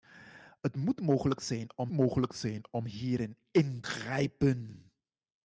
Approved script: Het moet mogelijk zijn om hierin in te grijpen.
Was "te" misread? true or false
true